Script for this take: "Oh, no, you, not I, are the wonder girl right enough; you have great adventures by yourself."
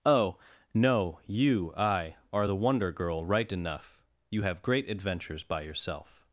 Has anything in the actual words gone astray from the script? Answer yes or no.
yes